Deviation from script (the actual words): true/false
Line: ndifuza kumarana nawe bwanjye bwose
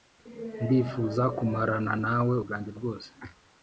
false